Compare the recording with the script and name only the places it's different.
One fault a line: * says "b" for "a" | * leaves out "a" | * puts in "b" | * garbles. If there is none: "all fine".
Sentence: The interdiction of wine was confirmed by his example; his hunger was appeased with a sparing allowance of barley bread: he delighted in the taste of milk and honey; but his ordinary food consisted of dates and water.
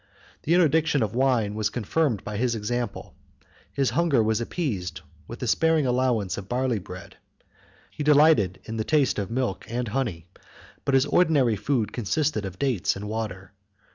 all fine